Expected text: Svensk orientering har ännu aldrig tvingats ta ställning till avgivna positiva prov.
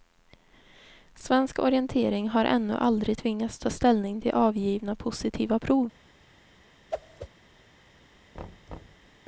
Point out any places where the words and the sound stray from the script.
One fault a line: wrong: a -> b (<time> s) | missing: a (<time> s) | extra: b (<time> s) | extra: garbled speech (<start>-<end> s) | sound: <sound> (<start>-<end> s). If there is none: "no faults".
sound: whoosh (6.9-7.3 s)
sound: thud (8.3-9.1 s)